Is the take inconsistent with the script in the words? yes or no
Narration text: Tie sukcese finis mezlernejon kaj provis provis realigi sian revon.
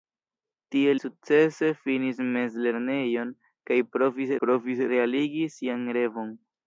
no